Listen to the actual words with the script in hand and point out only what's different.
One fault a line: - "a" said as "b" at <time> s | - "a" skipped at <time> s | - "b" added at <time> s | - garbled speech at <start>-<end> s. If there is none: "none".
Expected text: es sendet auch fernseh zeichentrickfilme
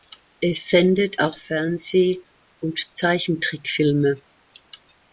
- "und" added at 2.6 s